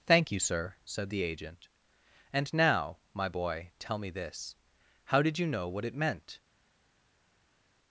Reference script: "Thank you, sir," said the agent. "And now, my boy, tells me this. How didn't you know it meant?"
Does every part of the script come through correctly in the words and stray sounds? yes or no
no